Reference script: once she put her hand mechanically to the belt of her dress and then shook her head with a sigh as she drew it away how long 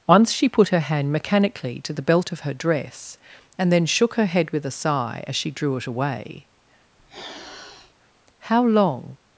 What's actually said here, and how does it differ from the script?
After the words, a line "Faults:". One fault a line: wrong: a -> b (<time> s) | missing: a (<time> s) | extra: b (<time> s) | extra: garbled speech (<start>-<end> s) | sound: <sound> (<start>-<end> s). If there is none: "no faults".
once she put her hand mechanically to the belt of her dress and then shook her head with a sigh as she drew it away how long
Faults:
sound: sniff (7.0-7.9 s)